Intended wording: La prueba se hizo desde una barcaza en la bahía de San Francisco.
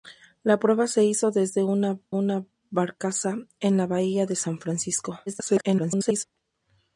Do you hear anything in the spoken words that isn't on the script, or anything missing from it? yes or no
yes